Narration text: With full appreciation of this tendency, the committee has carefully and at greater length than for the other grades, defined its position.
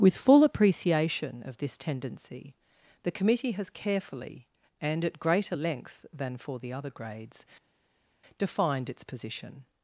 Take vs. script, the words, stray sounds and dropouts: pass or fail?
pass